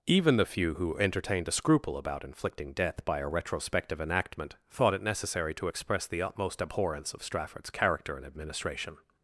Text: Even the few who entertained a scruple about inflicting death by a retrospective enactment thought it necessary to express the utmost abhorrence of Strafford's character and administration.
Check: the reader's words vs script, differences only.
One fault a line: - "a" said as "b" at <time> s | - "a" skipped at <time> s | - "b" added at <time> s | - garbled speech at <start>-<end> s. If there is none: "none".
none